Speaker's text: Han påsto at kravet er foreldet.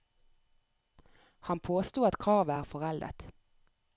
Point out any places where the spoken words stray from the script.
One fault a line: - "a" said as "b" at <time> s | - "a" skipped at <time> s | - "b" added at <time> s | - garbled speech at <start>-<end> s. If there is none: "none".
none